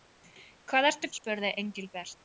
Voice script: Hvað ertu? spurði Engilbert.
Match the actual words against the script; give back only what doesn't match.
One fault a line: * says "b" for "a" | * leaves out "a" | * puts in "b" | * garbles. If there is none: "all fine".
all fine